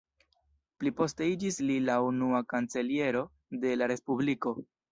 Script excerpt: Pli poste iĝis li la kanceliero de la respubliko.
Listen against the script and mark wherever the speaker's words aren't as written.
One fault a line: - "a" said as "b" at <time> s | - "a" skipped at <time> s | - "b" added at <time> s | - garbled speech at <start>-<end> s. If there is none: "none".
- "unua" added at 2.1 s